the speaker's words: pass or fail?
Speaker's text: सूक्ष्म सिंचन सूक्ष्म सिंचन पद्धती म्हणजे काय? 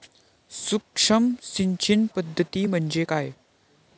fail